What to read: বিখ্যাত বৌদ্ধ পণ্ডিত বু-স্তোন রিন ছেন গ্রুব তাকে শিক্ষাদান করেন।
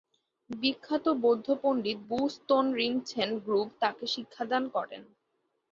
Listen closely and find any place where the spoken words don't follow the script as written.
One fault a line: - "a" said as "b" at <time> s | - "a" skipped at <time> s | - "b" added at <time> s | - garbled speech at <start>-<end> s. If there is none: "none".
none